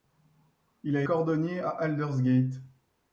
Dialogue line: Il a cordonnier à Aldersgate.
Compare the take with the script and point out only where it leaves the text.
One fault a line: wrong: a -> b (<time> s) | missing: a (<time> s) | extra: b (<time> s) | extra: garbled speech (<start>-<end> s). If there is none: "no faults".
no faults